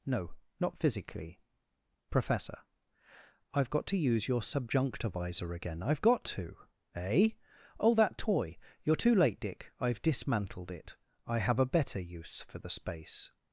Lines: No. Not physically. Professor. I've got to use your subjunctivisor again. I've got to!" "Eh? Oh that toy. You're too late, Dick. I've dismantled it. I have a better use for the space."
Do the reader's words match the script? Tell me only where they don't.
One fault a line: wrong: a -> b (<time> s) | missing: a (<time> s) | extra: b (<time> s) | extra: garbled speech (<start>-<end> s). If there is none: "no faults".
no faults